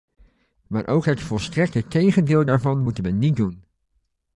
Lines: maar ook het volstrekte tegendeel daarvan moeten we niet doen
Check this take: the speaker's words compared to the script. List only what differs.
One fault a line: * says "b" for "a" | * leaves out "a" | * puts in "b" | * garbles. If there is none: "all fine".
all fine